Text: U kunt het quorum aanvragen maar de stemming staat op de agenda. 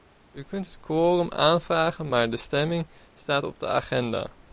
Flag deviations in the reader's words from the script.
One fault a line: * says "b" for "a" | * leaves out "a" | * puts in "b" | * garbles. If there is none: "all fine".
all fine